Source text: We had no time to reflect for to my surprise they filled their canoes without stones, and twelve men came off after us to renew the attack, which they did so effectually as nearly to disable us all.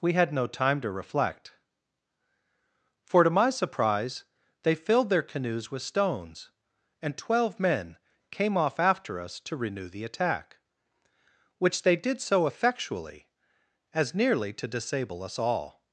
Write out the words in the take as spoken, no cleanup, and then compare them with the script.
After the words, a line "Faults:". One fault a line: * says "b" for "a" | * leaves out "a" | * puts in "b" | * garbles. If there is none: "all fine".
We had no time to reflect for to my surprise they filled their canoes with stones, and twelve men came off after us to renew the attack, which they did so effectually as nearly to disable us all.
Faults:
* says "with" for "without"